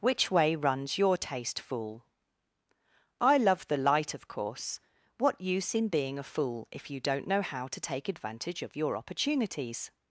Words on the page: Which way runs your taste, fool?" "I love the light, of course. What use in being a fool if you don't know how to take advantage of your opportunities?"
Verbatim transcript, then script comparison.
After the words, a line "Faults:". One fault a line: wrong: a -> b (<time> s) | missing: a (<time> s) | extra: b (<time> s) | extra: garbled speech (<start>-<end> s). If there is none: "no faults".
Which way runs your taste, fool?" "I love the light, of course. What use in being a fool if you don't know how to take advantage of your opportunities?"
Faults:
no faults